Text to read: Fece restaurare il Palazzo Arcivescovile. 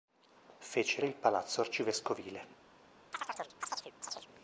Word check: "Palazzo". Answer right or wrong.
right